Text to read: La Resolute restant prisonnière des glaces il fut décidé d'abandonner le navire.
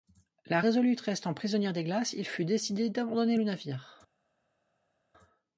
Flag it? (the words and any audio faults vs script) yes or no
no